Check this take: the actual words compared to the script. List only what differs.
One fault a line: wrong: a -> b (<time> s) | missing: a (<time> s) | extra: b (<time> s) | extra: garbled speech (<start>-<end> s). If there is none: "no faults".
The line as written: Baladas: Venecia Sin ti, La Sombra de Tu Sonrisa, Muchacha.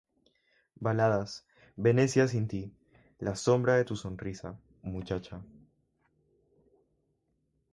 no faults